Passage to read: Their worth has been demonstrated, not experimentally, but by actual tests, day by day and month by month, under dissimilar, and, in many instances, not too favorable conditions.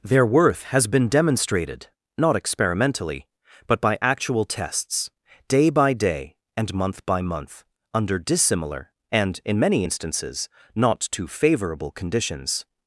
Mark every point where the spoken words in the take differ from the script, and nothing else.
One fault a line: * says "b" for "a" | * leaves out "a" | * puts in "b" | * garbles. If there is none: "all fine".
all fine